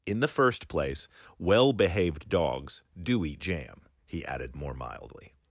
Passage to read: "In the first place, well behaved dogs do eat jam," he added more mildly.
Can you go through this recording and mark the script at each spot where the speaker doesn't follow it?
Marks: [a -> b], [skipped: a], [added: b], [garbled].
"In the first place, well behaved dogs do eat jam," he added more mildly.